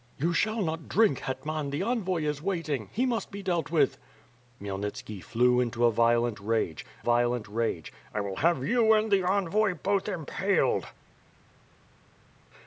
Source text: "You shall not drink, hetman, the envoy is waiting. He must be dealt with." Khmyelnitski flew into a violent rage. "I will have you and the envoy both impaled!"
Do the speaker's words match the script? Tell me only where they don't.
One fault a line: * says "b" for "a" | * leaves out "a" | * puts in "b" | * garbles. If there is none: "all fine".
* puts in "violent rage"